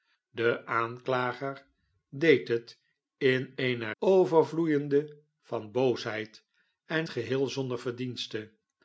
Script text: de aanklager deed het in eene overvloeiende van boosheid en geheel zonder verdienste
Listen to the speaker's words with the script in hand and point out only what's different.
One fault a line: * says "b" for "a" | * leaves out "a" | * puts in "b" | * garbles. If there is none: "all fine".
all fine